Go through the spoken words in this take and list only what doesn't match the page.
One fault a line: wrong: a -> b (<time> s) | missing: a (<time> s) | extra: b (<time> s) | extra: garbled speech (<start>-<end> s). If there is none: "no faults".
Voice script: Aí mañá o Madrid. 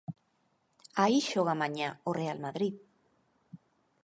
extra: xoga (1.3 s)
extra: Real (2.2 s)